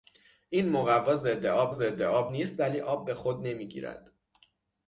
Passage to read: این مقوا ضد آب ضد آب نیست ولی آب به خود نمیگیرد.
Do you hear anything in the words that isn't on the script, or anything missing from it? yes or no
no